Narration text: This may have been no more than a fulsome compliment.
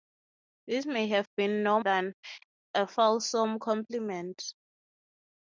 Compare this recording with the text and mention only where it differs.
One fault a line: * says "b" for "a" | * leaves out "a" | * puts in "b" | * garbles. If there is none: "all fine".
* leaves out "more"